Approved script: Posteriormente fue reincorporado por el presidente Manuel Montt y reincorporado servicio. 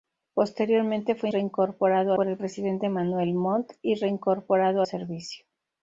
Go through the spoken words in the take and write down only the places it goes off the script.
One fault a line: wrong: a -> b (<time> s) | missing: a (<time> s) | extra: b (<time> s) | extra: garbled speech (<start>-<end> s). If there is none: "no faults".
no faults